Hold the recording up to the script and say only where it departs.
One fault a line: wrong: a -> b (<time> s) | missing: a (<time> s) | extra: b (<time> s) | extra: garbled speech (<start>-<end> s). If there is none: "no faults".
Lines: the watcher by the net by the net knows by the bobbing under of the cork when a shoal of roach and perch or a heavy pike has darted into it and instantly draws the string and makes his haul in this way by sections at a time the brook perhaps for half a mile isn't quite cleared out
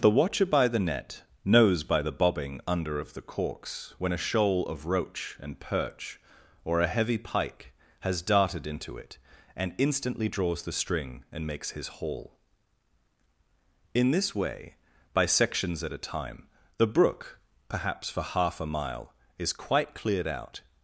missing: by the net (1.2 s)
wrong: cork -> corks (3.2 s)
wrong: isn't -> is (19.4 s)